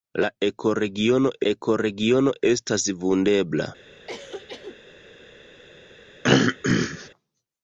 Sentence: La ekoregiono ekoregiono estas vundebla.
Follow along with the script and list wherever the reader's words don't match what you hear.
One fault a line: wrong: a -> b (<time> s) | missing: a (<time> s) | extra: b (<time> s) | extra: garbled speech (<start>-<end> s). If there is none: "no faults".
no faults